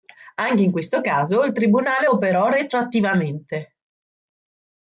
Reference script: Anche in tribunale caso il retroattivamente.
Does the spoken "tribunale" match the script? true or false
false